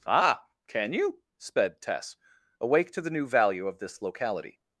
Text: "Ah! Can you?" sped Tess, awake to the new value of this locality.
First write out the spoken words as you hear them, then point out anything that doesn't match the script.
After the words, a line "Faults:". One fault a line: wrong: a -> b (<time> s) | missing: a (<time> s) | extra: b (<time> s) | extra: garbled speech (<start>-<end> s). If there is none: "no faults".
"Ah! Can you?" sped Tess, awake to the new value of this locality.
Faults:
no faults